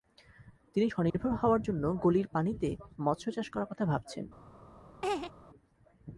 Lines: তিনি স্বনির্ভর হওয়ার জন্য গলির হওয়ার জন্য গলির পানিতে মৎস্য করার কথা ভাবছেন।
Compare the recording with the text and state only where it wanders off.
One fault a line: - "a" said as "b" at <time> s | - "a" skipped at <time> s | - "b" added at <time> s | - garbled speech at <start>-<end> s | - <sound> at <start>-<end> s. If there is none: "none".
- dropout at 1.1-1.1 s
- "হওয়ার জন্য গলির" skipped at 2.3 s
- "চাষ" added at 3.3 s
- laugh at 5.0-5.3 s